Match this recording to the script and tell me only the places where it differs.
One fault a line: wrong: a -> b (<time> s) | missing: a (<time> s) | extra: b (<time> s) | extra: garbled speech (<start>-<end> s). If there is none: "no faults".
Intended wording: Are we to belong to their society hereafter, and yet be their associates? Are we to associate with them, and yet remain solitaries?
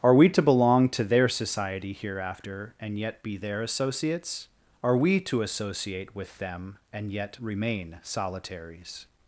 no faults